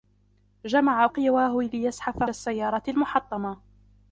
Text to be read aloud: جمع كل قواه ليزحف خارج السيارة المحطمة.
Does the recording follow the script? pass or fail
fail